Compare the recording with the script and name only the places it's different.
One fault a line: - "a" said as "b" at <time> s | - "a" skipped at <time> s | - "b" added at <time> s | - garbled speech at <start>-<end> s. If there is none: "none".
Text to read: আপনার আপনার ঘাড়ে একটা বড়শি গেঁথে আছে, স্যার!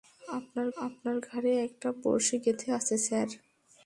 none